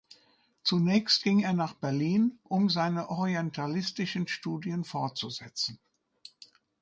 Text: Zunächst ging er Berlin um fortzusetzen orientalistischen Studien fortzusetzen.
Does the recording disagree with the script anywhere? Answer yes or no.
yes